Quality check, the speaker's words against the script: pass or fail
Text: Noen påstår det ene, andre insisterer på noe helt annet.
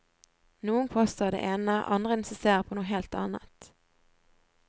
pass